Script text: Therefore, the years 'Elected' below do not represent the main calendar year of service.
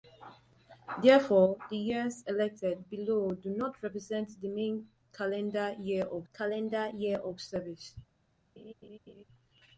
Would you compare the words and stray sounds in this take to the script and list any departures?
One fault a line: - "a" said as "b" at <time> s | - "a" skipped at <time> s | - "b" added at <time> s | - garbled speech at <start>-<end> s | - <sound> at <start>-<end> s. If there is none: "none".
- "calendar year of" added at 6.3 s
- laugh at 8.6-9.2 s